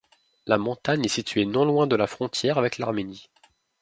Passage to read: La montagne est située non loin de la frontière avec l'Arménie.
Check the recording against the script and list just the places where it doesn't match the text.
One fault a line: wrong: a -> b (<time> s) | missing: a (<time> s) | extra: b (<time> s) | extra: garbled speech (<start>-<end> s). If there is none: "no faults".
no faults